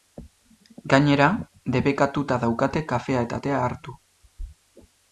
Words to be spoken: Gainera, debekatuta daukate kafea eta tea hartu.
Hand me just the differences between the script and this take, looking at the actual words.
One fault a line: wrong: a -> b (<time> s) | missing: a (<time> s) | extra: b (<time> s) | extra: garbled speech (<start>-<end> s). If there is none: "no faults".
no faults